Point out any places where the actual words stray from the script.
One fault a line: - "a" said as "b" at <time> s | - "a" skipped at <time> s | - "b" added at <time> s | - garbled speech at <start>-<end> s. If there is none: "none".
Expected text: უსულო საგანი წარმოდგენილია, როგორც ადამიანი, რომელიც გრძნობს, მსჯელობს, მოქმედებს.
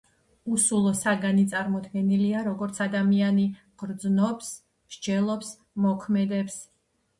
- "რომელიც" skipped at 3.4 s